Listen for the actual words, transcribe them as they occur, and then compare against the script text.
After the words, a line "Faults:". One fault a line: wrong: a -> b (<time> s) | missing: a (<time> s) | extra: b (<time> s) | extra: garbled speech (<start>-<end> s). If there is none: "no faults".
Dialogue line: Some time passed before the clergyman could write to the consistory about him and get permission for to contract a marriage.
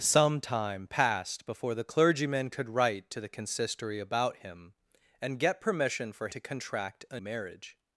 Some time passed before the clergyman could write to the consistory about him and get permission for to contract a marriage.
Faults:
no faults